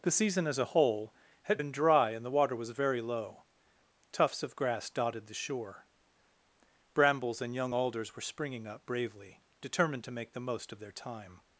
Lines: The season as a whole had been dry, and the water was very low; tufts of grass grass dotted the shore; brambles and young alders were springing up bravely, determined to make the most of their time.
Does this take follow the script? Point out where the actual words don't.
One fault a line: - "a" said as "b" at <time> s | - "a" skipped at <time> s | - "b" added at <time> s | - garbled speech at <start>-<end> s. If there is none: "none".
- "grass" skipped at 4.9 s